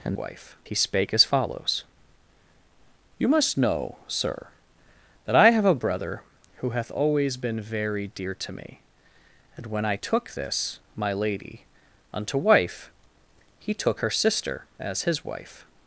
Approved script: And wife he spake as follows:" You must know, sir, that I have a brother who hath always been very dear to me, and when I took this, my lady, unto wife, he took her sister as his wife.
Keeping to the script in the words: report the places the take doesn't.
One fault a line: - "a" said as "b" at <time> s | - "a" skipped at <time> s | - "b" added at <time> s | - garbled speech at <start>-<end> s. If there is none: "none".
none